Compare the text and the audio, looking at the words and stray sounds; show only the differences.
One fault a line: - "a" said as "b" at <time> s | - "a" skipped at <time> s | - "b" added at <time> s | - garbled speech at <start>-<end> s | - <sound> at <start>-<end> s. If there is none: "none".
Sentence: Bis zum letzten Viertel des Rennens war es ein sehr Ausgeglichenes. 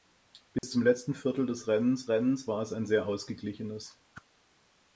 - dropout at 0.6-0.6 s
- "Rennens" added at 2.1 s
- whoosh at 4.1-4.3 s